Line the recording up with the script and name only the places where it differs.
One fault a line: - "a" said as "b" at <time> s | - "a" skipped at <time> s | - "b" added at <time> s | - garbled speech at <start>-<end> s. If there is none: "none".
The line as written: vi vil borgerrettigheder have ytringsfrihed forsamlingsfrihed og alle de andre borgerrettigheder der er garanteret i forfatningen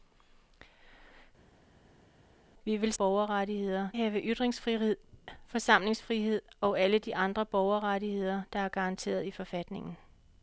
none